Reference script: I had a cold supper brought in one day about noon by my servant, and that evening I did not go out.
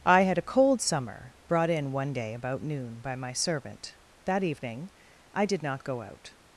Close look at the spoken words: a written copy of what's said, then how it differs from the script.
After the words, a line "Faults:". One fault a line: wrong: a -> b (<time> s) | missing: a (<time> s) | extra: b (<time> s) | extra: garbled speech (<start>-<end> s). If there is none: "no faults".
I had a cold summer brought in one day about noon by my servant, that evening I did not go out.
Faults:
wrong: supper -> summer (0.8 s)
missing: and (4.0 s)